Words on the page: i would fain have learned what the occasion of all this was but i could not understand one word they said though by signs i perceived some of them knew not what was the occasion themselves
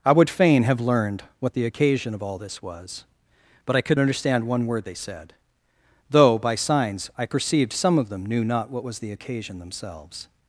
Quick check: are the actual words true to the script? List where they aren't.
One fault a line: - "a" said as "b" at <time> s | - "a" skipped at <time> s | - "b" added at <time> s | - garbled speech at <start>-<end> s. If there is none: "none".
- "not" skipped at 4.0 s